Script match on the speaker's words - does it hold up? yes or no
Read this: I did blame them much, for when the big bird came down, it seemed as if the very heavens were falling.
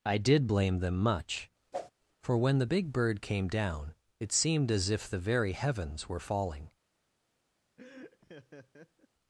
yes